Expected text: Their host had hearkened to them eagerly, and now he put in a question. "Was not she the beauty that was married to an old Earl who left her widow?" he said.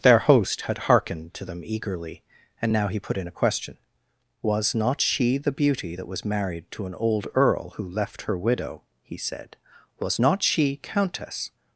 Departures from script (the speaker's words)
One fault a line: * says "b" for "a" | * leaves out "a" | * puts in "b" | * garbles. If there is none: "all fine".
* puts in "Was not she Countess"